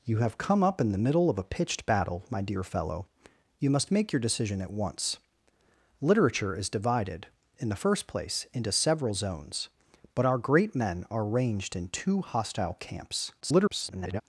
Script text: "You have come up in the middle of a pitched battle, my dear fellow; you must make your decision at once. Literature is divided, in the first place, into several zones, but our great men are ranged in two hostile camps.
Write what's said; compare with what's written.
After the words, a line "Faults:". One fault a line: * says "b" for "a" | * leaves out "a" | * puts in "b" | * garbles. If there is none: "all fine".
"You have come up in the middle of a pitched battle, my dear fellow; you must make your decision at once. Literature is divided, in the first place, into several zones, but our great men are ranged in two hostile camps. [garbled]
Faults:
* garbles